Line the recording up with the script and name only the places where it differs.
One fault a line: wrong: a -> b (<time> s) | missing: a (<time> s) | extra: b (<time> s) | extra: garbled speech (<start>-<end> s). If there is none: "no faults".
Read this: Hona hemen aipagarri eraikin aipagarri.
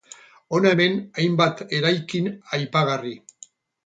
wrong: aipagarri -> hainbat (1.2 s)